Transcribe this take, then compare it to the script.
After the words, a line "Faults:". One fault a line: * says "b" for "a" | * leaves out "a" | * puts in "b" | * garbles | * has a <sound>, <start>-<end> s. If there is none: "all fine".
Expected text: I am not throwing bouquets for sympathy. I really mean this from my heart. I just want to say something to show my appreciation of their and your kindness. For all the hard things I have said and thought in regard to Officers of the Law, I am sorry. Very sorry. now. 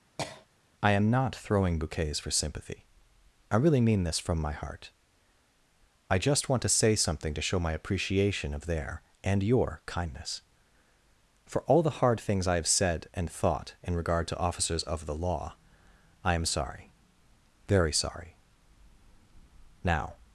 I am not throwing bouquets for sympathy. I really mean this from my heart. I just want to say something to show my appreciation of their and your kindness. For all the hard things I have said and thought in regard to Officers of the Law, I am sorry. Very sorry. now.
Faults:
* has a cough, 0.2-0.5 s